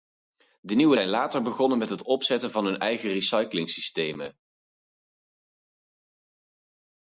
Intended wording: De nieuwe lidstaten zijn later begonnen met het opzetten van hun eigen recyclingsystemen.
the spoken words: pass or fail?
fail